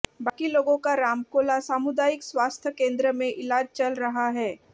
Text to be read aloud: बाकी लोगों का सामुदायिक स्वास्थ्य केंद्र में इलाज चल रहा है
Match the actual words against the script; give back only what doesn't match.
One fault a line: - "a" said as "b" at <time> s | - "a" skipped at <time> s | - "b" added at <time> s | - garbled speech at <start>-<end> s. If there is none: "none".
- "रामकोला" added at 0.9 s